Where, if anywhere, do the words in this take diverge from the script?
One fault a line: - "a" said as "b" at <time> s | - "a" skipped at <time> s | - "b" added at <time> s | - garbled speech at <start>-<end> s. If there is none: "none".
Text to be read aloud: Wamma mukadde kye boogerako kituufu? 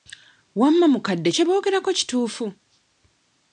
none